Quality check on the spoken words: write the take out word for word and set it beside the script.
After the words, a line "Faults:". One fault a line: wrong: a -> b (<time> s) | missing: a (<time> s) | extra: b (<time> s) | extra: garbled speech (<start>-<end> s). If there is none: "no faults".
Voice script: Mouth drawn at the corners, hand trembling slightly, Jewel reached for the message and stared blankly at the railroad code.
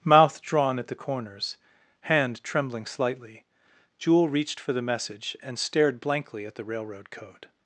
Mouth drawn at the corners, hand trembling slightly, Jewel reached for the message and stared blankly at the railroad code.
Faults:
no faults